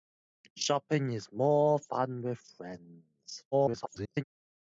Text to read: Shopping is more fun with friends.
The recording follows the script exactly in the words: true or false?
false